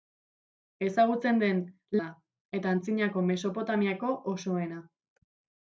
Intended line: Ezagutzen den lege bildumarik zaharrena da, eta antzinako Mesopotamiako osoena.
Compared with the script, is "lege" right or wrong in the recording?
wrong